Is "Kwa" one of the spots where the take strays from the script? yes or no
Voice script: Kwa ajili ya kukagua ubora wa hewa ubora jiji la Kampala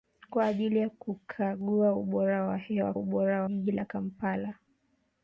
no